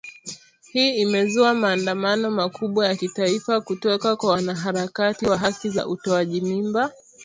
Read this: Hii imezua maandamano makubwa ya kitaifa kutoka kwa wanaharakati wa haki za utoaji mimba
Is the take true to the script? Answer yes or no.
yes